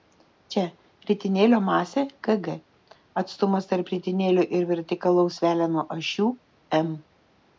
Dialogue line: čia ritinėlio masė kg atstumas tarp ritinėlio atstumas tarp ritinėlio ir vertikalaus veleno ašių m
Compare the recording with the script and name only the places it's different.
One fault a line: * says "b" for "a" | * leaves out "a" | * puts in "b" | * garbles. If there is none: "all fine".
* leaves out "atstumas tarp ritinėlio"